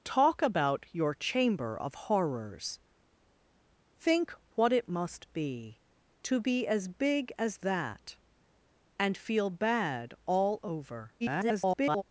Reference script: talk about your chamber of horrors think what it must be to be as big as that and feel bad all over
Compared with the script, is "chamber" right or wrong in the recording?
right